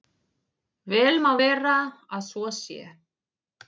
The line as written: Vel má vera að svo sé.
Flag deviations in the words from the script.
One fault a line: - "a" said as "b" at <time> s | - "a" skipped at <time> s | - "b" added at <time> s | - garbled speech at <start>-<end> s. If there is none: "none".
none